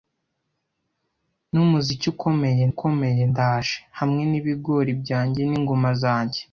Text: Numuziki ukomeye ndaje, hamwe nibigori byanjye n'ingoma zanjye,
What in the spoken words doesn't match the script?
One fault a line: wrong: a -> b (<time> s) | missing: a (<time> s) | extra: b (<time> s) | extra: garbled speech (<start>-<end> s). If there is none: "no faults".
extra: ukomeye (2.7 s)